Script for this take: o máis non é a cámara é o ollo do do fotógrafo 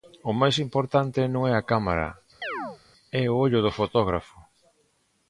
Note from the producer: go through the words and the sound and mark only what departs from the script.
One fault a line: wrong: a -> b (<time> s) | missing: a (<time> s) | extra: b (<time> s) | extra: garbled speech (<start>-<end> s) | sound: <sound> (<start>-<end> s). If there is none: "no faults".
extra: importante (0.7 s)
sound: chirp (2.4-2.8 s)
missing: do (3.8 s)